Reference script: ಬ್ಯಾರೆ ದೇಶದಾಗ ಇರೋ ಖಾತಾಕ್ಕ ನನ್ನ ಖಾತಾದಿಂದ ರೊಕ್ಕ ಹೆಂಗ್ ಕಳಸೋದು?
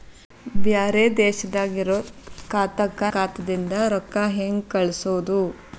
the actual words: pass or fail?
fail